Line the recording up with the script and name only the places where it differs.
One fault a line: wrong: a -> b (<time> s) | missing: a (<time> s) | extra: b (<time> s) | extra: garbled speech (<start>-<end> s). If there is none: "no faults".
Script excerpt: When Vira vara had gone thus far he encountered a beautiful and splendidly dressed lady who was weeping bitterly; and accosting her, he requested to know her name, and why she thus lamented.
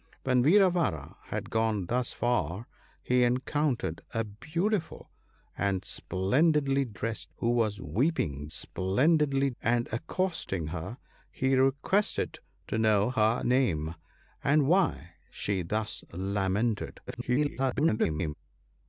missing: lady (7.3 s)
wrong: bitterly -> splendidly (8.5 s)
extra: garbled speech (17.1-18.3 s)